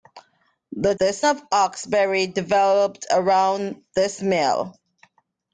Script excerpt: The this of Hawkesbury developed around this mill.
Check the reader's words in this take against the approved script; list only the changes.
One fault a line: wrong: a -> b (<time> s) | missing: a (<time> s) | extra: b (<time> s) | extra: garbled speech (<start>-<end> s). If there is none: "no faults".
no faults